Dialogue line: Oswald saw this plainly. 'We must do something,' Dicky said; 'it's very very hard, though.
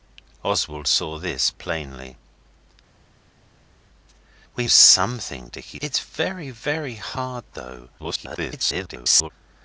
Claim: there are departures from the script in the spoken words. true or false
true